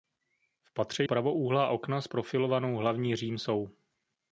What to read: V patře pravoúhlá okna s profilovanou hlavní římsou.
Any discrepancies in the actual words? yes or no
no